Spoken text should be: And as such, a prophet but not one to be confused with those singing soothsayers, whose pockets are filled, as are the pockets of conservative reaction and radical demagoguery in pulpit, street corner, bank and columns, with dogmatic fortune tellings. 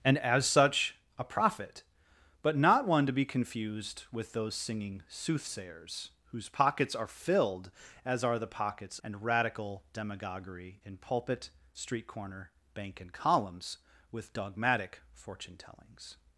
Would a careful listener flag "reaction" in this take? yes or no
yes